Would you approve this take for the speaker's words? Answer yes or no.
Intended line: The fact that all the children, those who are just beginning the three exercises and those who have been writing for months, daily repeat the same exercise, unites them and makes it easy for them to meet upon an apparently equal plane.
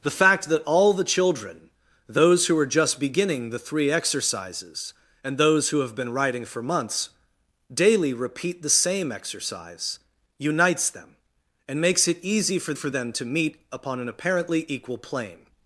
no